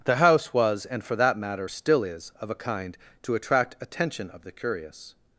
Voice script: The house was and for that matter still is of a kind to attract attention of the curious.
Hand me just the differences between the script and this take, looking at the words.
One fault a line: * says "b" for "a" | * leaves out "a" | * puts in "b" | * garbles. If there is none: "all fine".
all fine